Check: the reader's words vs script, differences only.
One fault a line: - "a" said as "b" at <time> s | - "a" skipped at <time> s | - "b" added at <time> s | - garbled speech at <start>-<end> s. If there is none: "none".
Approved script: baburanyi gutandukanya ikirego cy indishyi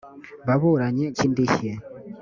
- "gutandukanya ikirego" skipped at 1.1 s